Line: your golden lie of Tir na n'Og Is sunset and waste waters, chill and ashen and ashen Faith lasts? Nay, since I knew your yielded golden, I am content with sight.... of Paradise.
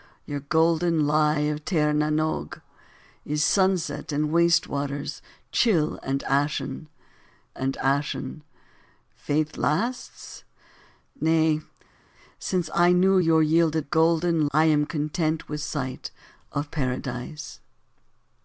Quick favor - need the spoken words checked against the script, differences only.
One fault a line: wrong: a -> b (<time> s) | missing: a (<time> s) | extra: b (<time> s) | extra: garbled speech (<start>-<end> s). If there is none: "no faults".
no faults